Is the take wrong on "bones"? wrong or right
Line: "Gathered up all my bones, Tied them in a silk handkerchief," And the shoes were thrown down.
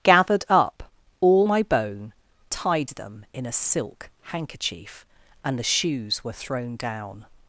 wrong